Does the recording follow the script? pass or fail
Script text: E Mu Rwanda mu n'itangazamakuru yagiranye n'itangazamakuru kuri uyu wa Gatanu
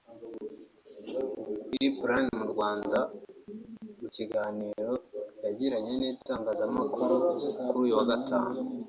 fail